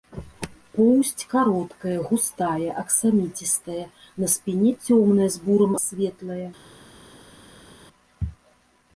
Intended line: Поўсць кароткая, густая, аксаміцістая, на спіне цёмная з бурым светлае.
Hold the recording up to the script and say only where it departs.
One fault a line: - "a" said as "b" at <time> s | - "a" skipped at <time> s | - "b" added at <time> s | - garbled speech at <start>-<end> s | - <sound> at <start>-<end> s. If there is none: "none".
none